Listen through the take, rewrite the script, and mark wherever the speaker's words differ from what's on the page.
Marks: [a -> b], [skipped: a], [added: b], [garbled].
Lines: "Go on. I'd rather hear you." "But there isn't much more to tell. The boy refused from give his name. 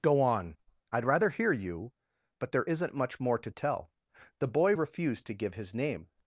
"Go on. I'd rather hear you." "But there isn't much more to tell. The boy refused [from -> to] give his name.